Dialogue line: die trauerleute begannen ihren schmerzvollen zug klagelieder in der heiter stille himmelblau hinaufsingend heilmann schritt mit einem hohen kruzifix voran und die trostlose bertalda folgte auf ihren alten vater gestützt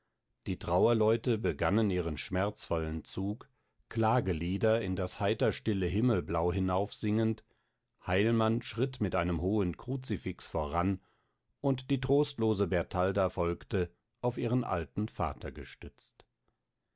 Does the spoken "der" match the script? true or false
false